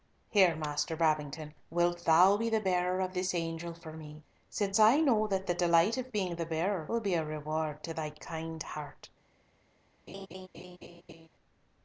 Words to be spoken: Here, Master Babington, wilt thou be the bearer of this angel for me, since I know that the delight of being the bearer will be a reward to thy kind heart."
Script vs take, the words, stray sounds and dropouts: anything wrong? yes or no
yes